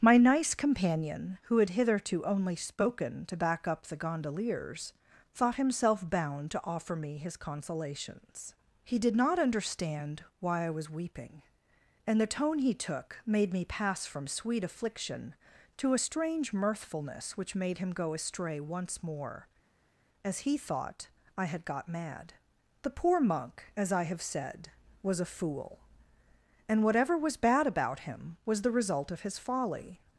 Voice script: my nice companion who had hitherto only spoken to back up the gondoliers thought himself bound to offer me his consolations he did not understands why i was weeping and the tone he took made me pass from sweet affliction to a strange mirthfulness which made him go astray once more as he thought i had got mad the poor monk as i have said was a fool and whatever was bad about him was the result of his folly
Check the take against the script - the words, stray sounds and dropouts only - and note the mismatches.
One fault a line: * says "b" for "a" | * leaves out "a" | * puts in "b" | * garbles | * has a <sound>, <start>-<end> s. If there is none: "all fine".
* says "understand" for "understands"